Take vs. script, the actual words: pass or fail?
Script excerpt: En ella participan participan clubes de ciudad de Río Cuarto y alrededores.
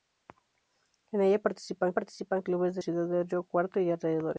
pass